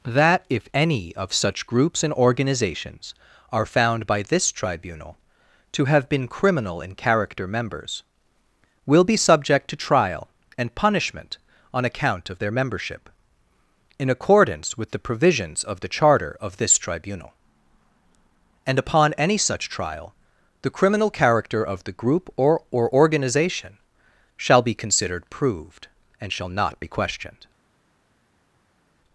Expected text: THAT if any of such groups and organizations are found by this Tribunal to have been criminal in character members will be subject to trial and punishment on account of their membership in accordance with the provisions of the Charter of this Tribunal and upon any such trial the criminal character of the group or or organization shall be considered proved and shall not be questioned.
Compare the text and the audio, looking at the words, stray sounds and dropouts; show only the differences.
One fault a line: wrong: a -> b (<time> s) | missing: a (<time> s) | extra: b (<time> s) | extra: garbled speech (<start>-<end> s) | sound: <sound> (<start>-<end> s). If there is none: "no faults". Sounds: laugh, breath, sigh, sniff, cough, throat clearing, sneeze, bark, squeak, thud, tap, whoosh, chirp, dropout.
no faults